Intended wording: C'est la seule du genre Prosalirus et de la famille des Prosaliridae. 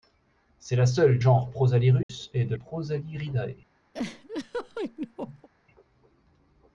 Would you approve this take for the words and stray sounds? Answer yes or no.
no